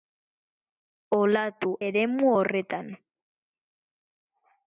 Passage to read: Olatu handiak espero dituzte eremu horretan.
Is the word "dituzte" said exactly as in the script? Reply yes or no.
no